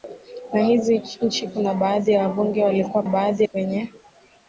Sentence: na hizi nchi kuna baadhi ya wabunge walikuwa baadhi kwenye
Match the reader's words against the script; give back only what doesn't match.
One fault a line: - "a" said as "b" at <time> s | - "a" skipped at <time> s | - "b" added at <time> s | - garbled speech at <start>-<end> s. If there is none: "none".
none